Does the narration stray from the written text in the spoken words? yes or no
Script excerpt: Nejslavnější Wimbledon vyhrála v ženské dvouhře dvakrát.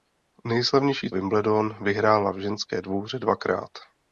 no